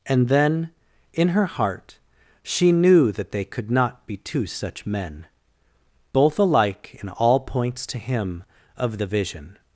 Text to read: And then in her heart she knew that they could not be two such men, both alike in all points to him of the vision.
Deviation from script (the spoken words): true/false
false